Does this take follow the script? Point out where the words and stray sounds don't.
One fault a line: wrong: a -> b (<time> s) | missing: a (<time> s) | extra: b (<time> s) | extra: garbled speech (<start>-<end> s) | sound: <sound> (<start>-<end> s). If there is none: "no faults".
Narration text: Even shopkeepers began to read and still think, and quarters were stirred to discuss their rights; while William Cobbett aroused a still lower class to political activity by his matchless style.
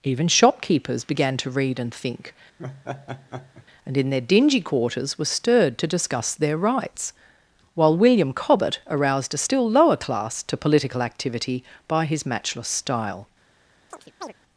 missing: still (1.9 s)
sound: laugh (2.6-3.7 s)
extra: in their dingy (4.0 s)
sound: chirp (13.9-14.3 s)